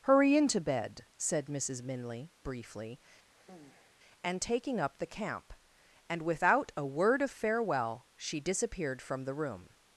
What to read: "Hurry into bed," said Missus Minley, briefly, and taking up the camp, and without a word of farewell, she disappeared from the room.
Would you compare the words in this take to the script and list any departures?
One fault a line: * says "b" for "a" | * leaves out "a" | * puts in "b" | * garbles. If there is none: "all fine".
all fine